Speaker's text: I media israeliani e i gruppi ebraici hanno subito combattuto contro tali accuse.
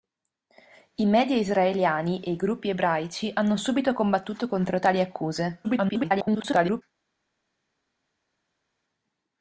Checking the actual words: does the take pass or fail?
fail